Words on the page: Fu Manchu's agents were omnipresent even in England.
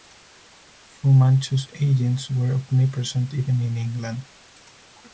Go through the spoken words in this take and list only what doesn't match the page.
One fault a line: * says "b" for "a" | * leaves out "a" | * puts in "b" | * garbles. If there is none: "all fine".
all fine